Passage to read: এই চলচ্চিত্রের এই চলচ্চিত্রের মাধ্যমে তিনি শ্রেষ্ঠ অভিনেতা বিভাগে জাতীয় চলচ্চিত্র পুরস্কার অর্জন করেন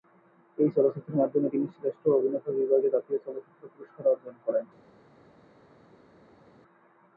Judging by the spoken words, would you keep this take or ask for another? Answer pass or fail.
fail